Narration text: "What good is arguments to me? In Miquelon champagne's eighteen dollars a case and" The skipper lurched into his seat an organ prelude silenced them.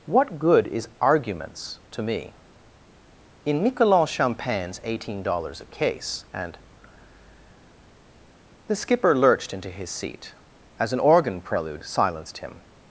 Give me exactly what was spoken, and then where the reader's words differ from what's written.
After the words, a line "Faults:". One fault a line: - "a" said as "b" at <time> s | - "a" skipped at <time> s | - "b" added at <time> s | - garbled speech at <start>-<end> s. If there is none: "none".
"What good is arguments to me? In Miquelon champagne's eighteen dollars a case and" The skipper lurched into his seat as an organ prelude silenced him.
Faults:
- "as" added at 10.8 s
- "them" said as "him" at 12.4 s